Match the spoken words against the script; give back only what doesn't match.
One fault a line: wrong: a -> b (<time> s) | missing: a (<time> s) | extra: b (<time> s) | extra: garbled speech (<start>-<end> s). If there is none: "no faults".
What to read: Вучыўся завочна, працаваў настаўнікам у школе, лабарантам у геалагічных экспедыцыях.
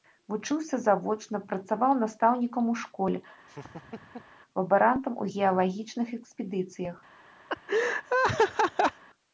no faults